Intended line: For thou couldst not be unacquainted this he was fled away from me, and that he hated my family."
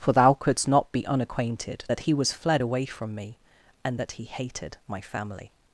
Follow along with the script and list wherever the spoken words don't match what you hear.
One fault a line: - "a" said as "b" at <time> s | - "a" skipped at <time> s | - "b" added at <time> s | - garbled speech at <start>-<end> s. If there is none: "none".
- "this" said as "that" at 1.9 s